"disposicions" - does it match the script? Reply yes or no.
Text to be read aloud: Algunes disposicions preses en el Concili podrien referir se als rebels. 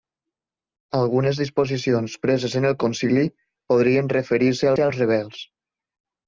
yes